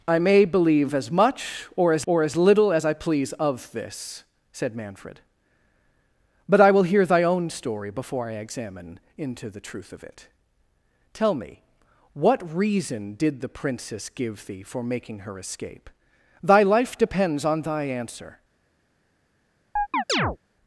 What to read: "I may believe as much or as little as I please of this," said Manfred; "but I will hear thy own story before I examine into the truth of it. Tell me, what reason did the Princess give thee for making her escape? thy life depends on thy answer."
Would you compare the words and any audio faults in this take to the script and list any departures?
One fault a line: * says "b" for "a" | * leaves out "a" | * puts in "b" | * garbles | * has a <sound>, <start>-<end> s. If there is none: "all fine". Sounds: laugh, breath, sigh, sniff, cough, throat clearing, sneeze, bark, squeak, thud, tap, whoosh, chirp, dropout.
* puts in "or as"
* has a chirp, 19.8-20.4 s